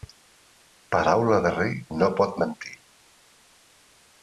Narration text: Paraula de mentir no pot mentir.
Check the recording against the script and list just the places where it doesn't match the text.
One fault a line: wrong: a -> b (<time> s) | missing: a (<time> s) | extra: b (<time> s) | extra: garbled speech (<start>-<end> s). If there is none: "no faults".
wrong: mentir -> rei (1.6 s)